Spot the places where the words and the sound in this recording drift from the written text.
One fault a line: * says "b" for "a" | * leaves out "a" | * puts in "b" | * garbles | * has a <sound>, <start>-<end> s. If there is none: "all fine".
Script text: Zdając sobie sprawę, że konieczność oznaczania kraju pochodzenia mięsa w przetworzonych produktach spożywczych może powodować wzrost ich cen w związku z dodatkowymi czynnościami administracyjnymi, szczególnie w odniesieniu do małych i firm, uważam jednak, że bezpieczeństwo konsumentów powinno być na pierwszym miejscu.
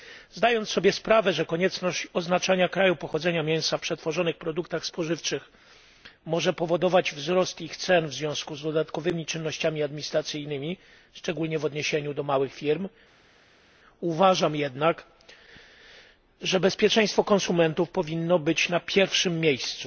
all fine